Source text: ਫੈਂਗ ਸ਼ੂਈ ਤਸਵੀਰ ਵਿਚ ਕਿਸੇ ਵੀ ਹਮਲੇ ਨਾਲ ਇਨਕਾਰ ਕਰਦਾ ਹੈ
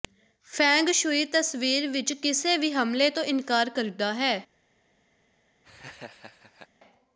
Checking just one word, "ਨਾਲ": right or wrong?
wrong